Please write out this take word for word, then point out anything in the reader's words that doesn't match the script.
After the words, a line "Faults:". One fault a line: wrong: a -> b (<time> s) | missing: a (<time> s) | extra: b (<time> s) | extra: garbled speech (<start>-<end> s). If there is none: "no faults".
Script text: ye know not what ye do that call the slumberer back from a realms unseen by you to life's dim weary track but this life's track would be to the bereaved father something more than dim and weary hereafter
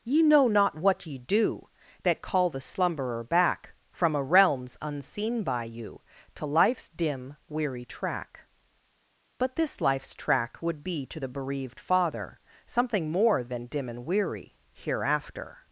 ye know not what ye do that call the slumberer back from a realms unseen by you to life's dim weary track but this life's track would be to the bereaved father something more than dim and weary hereafter
Faults:
no faults